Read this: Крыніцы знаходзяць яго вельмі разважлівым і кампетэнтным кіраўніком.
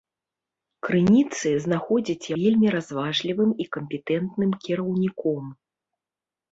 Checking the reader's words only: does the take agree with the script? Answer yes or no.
no